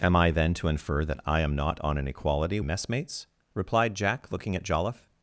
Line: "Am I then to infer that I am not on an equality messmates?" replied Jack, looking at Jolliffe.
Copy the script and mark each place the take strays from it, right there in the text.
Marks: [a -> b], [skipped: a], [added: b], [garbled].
"Am I then to infer that I am not on an equality messmates?" replied Jack, looking at Jolliffe.